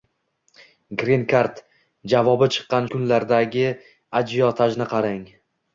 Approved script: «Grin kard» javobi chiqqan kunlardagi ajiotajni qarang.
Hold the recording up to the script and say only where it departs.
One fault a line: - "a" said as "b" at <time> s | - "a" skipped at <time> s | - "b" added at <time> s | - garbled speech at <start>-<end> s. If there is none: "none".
none